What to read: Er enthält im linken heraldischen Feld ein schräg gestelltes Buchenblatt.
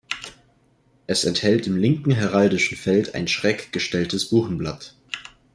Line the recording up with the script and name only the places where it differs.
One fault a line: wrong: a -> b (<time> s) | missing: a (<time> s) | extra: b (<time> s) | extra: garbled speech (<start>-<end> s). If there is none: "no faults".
wrong: Er -> Es (1.1 s)